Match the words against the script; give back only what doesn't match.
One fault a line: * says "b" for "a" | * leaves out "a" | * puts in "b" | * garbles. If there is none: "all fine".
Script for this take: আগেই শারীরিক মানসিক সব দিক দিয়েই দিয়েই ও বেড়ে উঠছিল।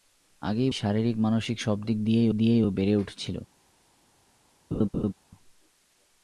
all fine